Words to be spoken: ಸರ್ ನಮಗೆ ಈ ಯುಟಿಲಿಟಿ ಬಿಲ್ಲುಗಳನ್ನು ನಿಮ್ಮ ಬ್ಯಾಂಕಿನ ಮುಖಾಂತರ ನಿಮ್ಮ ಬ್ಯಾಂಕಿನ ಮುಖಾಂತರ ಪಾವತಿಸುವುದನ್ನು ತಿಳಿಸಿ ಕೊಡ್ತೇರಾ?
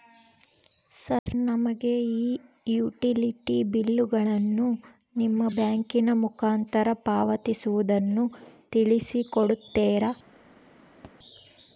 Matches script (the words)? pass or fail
fail